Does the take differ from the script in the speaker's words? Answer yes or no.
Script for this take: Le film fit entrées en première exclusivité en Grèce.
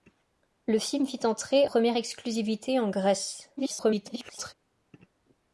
yes